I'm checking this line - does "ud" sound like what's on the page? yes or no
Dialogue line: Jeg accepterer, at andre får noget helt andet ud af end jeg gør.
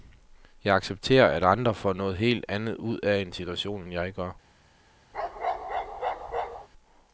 yes